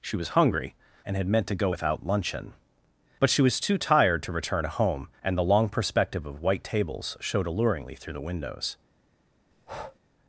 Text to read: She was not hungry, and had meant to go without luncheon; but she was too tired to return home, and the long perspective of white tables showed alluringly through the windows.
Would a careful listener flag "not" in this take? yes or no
yes